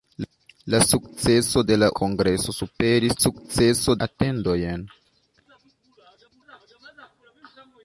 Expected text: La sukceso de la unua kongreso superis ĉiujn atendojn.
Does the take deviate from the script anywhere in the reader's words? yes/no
yes